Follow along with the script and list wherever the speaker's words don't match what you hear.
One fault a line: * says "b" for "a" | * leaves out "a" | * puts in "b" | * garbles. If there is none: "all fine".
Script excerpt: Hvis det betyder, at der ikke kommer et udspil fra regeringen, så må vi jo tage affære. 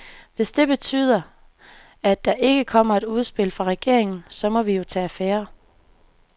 all fine